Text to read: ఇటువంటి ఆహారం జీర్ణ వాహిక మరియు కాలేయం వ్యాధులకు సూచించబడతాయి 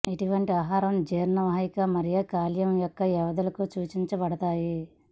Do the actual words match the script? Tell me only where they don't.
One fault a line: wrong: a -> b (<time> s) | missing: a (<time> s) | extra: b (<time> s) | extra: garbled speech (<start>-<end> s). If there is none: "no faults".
extra: యొక్క (2.8 s)